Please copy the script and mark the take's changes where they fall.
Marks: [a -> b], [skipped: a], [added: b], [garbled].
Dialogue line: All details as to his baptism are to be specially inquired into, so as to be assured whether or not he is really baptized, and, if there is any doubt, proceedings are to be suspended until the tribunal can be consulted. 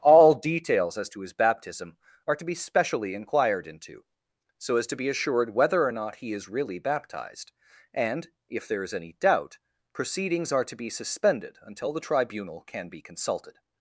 All details as to his baptism are to be specially inquired into, so as to be assured whether or not he is really baptized, and, if there is any doubt, proceedings are to be suspended until the tribunal can be consulted.